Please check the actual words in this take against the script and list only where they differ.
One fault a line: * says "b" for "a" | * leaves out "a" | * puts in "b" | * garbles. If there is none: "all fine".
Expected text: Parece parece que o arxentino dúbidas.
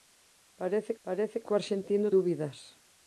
all fine